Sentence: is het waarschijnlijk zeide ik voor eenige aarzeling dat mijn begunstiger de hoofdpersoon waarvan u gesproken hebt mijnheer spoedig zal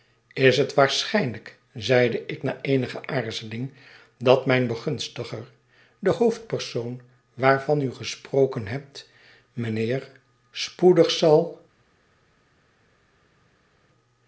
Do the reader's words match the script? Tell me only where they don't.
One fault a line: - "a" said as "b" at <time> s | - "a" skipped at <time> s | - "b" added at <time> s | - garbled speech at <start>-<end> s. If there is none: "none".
- "voor" said as "na" at 2.4 s